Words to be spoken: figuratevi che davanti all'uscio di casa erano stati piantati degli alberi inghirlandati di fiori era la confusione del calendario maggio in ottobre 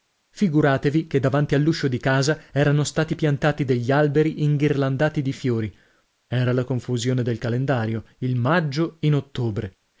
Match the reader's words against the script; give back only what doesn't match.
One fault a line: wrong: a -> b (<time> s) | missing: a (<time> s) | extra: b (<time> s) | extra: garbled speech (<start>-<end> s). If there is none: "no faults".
extra: il (8.2 s)